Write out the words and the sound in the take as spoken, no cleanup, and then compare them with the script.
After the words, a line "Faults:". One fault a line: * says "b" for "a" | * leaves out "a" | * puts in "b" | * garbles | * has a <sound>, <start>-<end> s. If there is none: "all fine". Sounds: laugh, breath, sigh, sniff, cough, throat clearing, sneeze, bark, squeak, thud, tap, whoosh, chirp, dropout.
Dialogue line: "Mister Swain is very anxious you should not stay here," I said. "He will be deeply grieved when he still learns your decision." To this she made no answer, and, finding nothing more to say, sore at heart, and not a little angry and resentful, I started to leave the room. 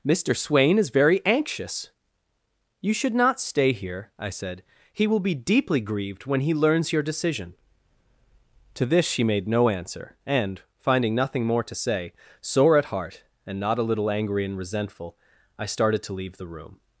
"Mister Swain is very anxious you should not stay here," I said. "He will be deeply grieved when he learns your decision." To this she made no answer, and, finding nothing more to say, sore at heart, and not a little angry and resentful, I started to leave the room.
Faults:
* leaves out "still"